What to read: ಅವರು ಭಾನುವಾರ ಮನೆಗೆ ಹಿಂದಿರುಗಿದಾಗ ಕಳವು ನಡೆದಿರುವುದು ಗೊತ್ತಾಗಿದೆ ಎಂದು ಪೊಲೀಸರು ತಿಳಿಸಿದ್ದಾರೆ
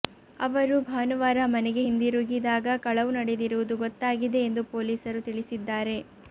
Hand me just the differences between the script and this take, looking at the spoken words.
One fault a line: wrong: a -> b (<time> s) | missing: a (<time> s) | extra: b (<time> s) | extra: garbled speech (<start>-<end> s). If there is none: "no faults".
no faults